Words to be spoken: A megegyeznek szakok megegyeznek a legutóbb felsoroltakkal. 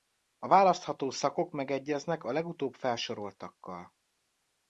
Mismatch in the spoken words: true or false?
true